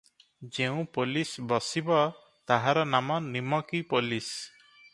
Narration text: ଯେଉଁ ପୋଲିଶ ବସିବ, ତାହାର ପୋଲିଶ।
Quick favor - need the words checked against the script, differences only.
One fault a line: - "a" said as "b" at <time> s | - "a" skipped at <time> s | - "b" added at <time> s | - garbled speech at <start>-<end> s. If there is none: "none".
- "ନାମ ନିମକୀ" added at 2.9 s